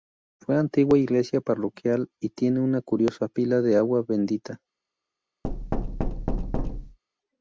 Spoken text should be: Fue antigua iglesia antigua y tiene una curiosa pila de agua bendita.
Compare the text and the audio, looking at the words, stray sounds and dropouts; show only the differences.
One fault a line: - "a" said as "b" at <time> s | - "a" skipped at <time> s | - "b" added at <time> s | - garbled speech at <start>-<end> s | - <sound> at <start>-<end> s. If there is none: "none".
- "antigua" said as "parroquial" at 1.4 s
- thud at 5.4-7.0 s